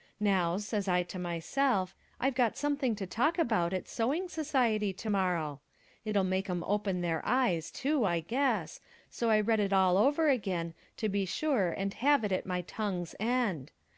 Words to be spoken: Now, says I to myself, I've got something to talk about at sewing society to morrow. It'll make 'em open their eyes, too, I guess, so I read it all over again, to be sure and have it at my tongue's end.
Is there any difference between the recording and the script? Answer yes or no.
no